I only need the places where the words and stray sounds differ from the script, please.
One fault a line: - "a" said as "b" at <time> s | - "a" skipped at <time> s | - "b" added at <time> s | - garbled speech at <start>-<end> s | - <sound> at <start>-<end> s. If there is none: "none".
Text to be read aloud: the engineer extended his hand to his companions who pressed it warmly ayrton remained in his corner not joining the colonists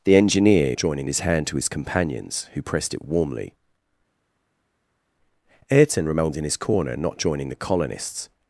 - "extended" said as "joining" at 0.7 s